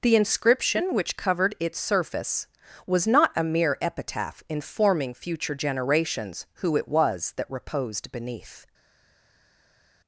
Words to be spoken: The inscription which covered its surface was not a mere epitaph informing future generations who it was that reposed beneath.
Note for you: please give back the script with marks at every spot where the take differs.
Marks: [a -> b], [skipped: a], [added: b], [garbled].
The inscription which covered its surface was not a mere epitaph informing future generations who it was that reposed beneath.